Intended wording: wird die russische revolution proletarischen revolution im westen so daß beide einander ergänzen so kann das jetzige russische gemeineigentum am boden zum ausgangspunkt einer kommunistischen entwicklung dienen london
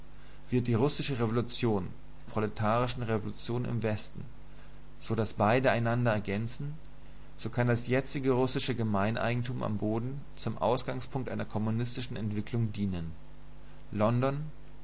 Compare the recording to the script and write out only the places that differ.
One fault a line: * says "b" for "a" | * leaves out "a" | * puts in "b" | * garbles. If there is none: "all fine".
all fine